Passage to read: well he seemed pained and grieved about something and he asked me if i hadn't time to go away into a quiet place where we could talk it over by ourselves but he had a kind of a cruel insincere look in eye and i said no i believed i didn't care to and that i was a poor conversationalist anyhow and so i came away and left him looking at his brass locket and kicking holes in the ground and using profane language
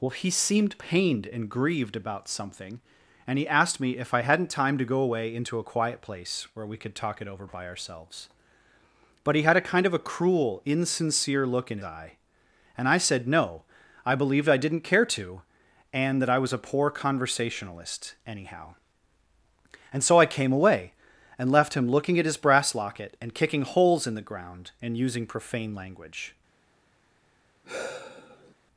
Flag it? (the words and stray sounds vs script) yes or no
yes